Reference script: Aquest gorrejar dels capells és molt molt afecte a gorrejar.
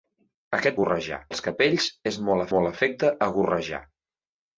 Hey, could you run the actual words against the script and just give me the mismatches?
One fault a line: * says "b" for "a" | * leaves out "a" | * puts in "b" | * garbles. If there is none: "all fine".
all fine